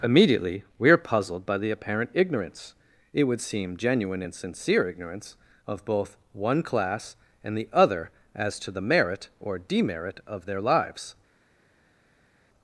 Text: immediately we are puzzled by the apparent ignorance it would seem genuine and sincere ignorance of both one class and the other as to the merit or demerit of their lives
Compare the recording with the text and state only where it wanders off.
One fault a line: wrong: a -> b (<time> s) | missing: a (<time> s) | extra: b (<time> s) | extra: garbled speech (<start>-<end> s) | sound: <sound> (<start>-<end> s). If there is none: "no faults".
no faults